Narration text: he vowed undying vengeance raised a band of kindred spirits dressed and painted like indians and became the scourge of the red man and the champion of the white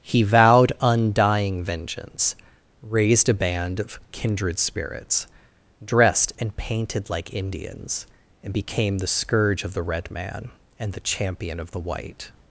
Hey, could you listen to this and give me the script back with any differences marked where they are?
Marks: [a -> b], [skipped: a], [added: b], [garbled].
he vowed undying vengeance raised a band of kindred spirits dressed and painted like indians and became the scourge of the red man and the champion of the white